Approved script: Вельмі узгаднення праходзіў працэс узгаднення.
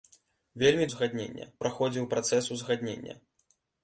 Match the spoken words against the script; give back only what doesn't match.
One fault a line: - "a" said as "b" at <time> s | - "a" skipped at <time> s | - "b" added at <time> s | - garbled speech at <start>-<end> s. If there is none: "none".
none